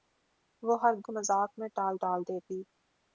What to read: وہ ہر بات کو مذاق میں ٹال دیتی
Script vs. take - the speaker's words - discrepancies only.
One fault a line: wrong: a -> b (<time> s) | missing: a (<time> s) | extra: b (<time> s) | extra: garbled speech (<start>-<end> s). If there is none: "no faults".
missing: بات (0.9 s)
extra: ٹال (2.0 s)